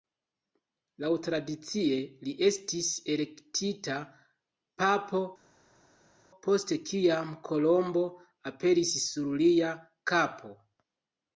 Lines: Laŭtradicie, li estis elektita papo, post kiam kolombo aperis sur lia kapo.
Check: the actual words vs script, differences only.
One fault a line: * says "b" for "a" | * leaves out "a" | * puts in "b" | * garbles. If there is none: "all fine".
all fine